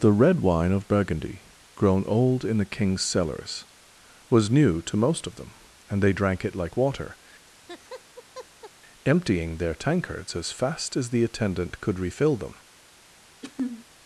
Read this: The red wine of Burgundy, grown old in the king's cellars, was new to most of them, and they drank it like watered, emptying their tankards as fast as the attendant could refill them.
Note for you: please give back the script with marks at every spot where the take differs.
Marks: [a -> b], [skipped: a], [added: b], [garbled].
The red wine of Burgundy, grown old in the king's cellars, was new to most of them, and they drank it like [watered, -> water] emptying their tankards as fast as the attendant could refill them.